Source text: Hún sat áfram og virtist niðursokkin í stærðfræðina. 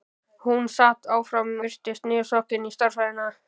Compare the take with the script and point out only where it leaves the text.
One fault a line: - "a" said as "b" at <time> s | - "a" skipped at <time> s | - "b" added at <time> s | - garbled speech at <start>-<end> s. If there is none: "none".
- "og" skipped at 1.5 s